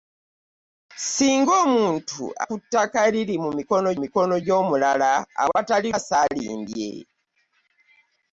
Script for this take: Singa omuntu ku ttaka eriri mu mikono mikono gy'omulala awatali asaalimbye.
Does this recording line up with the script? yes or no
yes